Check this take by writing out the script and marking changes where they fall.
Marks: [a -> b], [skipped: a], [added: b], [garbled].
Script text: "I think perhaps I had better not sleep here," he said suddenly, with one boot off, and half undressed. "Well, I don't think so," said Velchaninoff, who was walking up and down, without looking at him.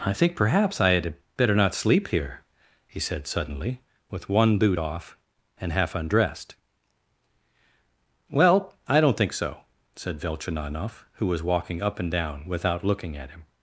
"I think perhaps I had better not sleep here," he said suddenly, with one boot off, and half undressed. "Well, I don't think so," said Velchaninoff, who was walking up and down, without looking at him.